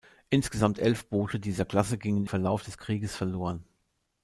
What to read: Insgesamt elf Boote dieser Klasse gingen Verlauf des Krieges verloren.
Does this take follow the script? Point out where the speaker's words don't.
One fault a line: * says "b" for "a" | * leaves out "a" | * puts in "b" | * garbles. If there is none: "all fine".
all fine